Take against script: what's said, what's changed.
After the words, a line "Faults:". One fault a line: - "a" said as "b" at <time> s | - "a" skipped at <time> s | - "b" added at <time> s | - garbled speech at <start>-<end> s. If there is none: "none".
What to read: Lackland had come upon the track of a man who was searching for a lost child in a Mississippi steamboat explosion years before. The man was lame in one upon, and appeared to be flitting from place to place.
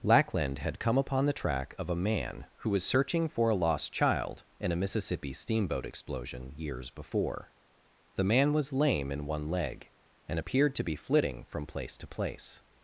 Lackland had come upon the track of a man who was searching for a lost child in a Mississippi steamboat explosion years before. The man was lame in one leg, and appeared to be flitting from place to place.
Faults:
- "upon" said as "leg" at 9.5 s